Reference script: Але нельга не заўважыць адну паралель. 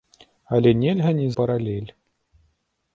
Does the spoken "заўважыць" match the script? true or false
false